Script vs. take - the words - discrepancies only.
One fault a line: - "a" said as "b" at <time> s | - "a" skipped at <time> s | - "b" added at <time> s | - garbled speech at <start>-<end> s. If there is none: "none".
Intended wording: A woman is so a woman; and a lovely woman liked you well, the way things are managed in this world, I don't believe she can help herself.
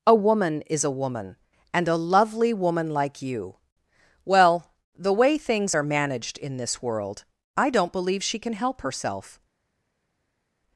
- "so" skipped at 0.8 s
- "liked" said as "like" at 2.9 s